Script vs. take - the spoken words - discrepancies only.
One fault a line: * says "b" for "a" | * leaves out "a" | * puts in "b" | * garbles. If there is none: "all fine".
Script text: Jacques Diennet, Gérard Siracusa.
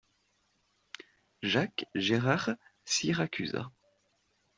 * leaves out "Diennet"